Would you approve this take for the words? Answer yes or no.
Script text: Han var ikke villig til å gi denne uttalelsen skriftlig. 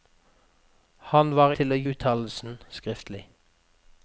no